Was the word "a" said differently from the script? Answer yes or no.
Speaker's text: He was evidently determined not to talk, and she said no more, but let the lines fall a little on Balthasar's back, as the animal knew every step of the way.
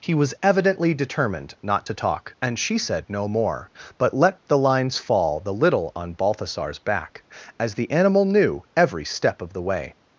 yes